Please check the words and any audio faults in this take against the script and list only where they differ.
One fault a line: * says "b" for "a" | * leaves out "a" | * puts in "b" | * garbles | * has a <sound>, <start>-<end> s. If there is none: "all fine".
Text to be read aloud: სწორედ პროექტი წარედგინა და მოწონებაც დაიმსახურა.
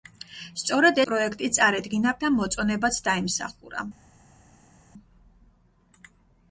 all fine